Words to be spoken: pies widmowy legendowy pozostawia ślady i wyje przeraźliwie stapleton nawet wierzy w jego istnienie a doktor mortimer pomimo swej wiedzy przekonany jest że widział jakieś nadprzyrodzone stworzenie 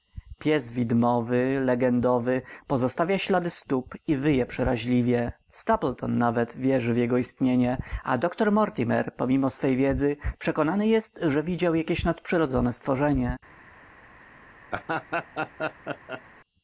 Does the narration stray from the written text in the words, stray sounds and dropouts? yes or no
yes